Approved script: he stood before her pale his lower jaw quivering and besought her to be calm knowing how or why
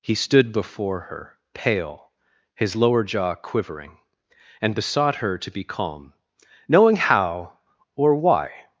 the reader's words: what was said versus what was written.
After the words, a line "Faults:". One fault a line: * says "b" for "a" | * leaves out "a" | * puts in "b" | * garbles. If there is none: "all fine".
he stood before her pale his lower jaw quivering and besought her to be calm knowing how or why
Faults:
all fine